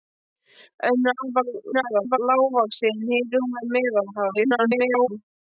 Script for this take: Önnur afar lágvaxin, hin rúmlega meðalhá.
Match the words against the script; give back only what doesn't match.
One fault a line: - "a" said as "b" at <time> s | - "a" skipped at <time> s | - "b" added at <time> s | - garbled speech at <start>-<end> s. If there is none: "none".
- garbled speech at 1.7-2.2 s
- garbled speech at 4.3-5.1 s